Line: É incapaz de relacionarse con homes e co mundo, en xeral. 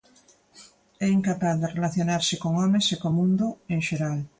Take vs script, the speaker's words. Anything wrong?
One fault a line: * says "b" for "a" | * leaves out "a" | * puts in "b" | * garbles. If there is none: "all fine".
all fine